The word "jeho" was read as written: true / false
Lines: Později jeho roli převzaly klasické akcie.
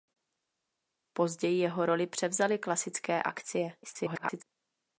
true